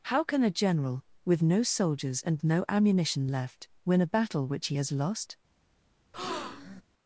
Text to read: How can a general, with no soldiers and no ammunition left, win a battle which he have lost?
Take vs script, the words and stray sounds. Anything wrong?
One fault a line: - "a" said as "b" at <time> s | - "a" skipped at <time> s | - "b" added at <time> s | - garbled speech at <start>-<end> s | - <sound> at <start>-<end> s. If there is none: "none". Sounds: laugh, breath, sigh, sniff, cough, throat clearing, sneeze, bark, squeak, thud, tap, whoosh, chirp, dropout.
- "have" said as "has" at 4.8 s
- breath at 6.1-6.8 s